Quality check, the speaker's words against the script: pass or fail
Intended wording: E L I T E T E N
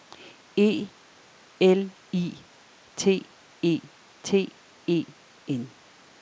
pass